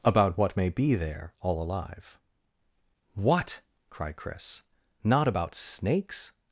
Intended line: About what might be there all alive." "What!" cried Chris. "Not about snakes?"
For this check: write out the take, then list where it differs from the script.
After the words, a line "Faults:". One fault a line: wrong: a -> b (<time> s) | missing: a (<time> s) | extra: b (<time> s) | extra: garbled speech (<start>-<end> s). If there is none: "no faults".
About what may be there all alive." "What!" cried Chris. "Not about snakes?"
Faults:
wrong: might -> may (0.6 s)